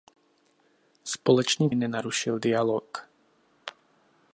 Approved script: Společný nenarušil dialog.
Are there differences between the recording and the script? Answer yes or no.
no